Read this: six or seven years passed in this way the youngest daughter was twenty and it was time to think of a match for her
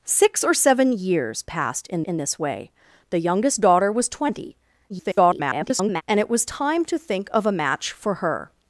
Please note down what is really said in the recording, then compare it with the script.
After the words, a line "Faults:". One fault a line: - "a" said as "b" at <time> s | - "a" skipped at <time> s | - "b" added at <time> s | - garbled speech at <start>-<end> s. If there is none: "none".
six or seven years passed in in this way the youngest daughter was twenty [garbled] and it was time to think of a match for her
Faults:
- "in" added at 2.0 s
- garbled speech at 4.9-6.0 s